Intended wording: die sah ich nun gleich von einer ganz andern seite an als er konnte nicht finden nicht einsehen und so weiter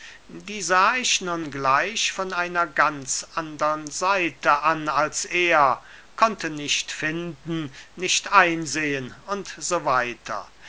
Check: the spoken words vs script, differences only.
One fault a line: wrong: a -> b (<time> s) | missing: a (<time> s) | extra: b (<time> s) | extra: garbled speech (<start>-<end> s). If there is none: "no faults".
no faults